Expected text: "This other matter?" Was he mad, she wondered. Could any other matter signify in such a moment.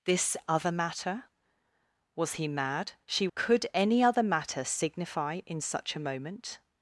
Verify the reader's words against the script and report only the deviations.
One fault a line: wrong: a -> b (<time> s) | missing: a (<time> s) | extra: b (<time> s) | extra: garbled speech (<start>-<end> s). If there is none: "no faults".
missing: wondered (3.3 s)